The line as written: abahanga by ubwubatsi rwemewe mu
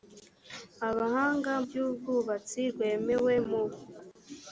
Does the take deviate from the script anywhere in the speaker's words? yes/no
no